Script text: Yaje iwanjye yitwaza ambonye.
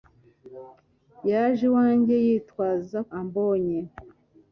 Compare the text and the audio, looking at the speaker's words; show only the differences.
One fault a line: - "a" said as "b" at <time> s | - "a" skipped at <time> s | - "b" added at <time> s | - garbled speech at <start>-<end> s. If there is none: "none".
none